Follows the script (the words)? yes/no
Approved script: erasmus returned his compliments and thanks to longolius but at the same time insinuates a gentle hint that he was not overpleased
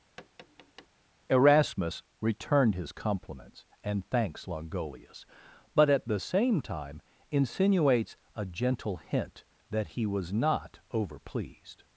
no